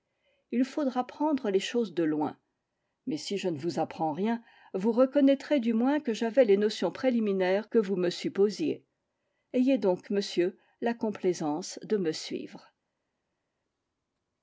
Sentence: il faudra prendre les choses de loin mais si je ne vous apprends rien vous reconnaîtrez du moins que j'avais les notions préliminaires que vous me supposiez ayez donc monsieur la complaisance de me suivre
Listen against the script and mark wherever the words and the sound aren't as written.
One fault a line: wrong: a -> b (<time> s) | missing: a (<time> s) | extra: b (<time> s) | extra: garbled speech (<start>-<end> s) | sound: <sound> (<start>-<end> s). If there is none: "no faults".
no faults